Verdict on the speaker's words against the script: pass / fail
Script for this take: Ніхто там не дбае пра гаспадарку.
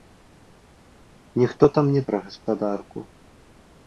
fail